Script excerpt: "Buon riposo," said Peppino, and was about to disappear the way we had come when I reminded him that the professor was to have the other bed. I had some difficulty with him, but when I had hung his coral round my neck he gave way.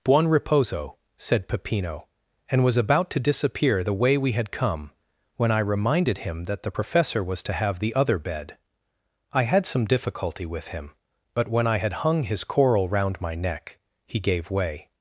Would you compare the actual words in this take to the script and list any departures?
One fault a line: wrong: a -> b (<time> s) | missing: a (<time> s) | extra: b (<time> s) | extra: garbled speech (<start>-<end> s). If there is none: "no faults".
no faults